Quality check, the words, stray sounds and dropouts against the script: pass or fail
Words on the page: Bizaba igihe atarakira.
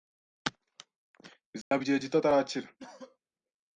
fail